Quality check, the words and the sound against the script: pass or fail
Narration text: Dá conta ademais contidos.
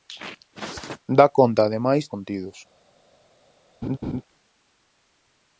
fail